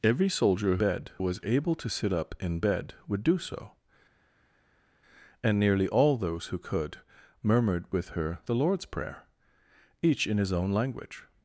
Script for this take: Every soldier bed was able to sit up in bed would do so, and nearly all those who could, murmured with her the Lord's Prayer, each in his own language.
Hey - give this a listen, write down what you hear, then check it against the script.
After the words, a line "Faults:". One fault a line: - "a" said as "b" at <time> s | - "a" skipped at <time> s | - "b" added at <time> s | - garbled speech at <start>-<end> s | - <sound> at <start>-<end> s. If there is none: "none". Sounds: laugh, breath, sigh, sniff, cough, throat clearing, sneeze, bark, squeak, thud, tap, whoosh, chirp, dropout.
Every soldier bed was able to sit up in bed would do so, and nearly all those who could, murmured with her the Lord's Prayer, each in his own language.
Faults:
none